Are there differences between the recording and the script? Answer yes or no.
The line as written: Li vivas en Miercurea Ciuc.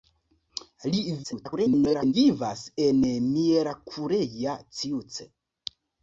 yes